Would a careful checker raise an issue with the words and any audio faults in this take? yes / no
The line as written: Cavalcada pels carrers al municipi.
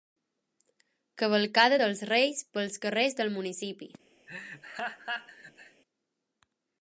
yes